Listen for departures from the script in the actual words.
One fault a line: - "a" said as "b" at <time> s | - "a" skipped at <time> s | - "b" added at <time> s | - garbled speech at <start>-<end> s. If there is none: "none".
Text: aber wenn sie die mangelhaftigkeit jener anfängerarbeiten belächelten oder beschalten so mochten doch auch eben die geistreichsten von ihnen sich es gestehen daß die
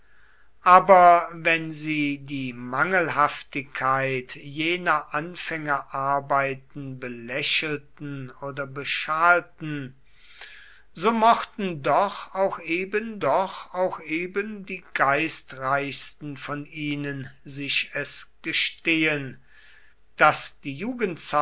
- "doch auch eben" added at 13.2 s